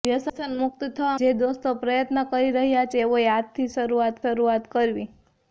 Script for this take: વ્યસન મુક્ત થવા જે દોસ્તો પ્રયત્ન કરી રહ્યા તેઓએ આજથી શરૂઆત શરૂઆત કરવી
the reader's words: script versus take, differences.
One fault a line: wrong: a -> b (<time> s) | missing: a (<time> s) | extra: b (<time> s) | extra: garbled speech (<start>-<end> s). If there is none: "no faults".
no faults